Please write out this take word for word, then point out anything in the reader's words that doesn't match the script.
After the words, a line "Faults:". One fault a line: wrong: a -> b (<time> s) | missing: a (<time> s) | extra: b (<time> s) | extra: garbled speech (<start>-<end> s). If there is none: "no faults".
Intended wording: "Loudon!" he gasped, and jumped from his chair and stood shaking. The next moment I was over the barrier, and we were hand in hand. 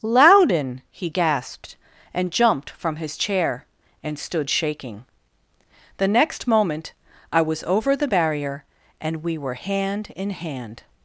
"Loudon!" he gasped, and jumped from his chair and stood shaking. The next moment I was over the barrier, and we were hand in hand.
Faults:
no faults